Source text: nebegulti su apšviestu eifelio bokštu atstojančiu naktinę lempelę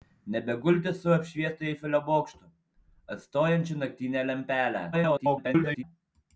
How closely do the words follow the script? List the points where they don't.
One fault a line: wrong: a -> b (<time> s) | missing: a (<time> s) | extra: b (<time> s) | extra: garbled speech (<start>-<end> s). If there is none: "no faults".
extra: garbled speech (4.9-5.8 s)